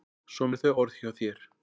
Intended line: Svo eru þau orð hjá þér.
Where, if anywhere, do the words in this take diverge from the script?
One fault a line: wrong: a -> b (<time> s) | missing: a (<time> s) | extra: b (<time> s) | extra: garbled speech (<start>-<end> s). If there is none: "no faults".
no faults